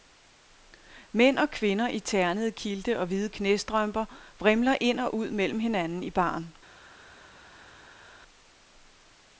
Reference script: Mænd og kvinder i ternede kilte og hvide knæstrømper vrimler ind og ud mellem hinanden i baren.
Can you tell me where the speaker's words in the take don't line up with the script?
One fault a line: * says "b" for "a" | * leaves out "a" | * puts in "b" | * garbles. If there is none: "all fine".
all fine